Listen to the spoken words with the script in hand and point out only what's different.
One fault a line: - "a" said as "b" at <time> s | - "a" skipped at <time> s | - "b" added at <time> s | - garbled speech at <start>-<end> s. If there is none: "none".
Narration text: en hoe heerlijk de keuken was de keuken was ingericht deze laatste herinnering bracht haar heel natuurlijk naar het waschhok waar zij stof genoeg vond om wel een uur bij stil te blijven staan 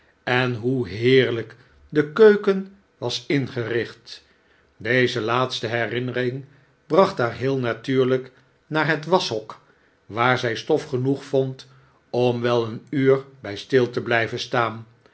- "de keuken was" skipped at 3.2 s